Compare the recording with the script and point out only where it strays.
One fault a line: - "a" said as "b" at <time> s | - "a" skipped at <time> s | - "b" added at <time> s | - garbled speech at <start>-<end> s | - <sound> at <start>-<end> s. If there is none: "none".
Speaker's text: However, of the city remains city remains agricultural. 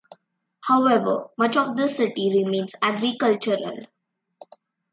- "much" added at 1.4 s
- "city remains" skipped at 2.7 s